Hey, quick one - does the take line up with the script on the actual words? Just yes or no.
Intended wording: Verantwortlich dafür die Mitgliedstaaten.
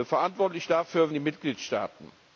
yes